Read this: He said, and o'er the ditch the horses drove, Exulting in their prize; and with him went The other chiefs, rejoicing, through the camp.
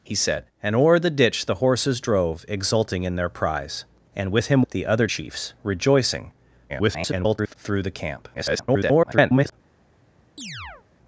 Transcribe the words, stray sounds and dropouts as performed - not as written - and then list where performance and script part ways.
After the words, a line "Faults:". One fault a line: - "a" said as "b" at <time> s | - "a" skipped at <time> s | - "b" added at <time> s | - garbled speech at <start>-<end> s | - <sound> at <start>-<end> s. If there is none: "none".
He said, and o'er the ditch the horses drove, Exulting in their prize; and with him The other chiefs, rejoicing, [garbled] through the camp. [garbled]
Faults:
- "went" skipped at 4.6 s
- garbled speech at 6.7-7.5 s
- garbled speech at 8.3-9.5 s
- chirp at 10.4-10.9 s